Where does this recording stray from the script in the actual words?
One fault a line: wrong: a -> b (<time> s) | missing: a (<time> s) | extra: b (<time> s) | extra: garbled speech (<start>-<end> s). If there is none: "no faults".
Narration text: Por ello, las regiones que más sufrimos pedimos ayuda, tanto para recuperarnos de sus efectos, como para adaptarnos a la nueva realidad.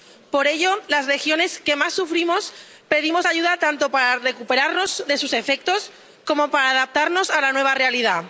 no faults